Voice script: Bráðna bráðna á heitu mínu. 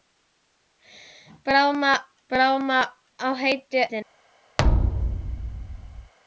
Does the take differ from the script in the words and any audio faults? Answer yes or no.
yes